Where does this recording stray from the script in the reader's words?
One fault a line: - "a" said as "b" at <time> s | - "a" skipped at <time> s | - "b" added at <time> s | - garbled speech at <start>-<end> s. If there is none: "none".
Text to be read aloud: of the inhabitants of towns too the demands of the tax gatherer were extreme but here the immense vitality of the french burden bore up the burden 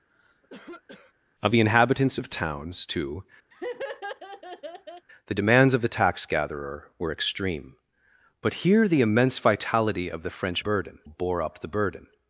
none